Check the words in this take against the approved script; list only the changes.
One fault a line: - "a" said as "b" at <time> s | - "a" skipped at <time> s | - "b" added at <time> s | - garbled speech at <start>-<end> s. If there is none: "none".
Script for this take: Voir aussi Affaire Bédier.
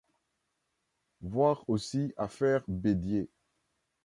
none